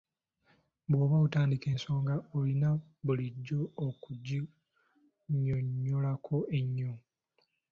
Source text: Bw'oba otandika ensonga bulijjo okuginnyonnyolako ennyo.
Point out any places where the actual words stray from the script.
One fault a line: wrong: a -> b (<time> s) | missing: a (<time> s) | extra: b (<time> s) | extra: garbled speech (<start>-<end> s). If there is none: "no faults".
extra: olina (2.4 s)